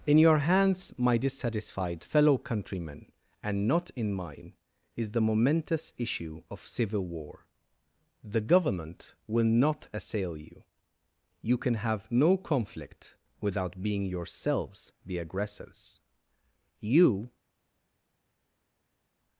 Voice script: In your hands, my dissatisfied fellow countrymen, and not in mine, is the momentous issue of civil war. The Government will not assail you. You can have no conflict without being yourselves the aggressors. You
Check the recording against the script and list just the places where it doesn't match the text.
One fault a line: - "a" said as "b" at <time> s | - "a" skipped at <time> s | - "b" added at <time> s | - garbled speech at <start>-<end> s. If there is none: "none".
none